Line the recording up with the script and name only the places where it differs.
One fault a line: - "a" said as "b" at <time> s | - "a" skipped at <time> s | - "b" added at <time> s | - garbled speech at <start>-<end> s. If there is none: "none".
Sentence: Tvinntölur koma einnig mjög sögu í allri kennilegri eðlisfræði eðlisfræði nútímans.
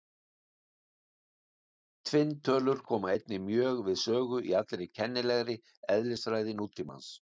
- "við" added at 3.9 s
- "eðlisfræði" skipped at 6.6 s